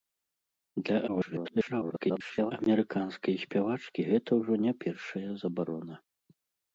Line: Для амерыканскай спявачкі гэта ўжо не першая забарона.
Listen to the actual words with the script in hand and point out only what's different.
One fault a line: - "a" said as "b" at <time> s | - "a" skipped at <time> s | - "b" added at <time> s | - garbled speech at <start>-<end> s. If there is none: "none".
- garbled speech at 1.1-2.5 s